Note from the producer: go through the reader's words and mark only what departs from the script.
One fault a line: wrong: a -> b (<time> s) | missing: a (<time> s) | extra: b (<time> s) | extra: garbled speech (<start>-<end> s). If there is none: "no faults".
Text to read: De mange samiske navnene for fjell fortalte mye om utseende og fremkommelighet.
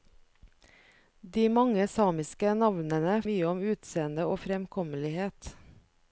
missing: for fjell fortalte (3.1 s)